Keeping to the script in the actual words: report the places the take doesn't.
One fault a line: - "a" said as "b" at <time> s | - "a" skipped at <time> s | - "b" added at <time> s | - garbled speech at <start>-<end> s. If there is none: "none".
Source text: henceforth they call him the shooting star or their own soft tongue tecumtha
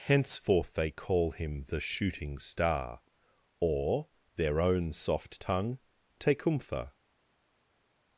none